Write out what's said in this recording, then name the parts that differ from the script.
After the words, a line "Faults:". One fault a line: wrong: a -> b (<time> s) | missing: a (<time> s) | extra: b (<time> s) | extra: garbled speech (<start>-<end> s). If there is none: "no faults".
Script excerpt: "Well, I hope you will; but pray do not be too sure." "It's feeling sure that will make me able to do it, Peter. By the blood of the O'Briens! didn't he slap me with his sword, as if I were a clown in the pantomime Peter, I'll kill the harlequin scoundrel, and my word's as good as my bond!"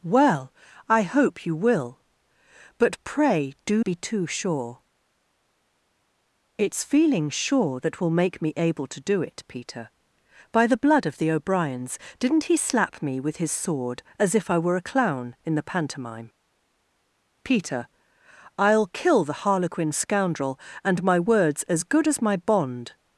"Well, I hope you will; but pray do be too sure." "It's feeling sure that will make me able to do it, Peter. By the blood of the O'Briens! didn't he slap me with his sword, as if I were a clown in the pantomime Peter, I'll kill the harlequin scoundrel, and my word's as good as my bond!"
Faults:
missing: not (3.8 s)